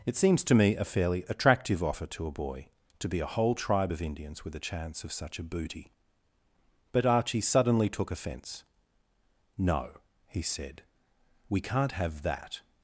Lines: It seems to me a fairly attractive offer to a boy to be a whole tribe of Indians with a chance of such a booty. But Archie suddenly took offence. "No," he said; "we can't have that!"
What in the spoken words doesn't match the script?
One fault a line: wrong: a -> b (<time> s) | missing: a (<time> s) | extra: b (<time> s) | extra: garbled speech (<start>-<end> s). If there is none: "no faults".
no faults